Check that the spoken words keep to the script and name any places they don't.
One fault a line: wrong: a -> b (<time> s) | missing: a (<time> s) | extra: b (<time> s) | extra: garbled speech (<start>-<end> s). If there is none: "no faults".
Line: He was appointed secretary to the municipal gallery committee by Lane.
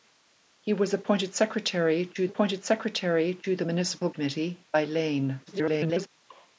extra: appointed secretary to (2.3 s)
missing: gallery (4.1 s)
extra: garbled speech (5.5-6.1 s)